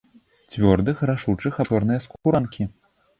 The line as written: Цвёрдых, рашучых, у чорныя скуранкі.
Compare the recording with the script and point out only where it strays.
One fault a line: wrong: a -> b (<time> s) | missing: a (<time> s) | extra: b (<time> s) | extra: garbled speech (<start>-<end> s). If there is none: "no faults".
no faults